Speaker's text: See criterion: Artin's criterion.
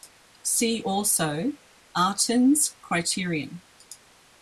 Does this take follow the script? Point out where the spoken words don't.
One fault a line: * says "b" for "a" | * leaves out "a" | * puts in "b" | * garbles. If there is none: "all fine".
* says "also" for "criterion"